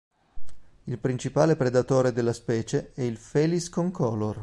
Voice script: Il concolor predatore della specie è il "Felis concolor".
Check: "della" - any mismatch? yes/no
no